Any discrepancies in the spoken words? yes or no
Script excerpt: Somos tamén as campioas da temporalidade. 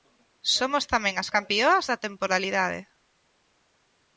no